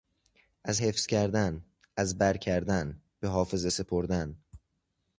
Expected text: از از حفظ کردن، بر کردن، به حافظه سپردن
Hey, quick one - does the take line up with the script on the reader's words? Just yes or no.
no